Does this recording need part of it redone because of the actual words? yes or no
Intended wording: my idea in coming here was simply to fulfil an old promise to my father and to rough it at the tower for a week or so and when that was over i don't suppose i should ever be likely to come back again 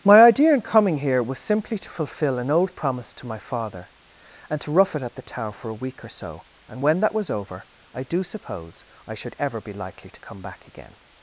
yes